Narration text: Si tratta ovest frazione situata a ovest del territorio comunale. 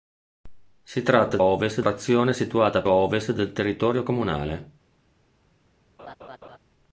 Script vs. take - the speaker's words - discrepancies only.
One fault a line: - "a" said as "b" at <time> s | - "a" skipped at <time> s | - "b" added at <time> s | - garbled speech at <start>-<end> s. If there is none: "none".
none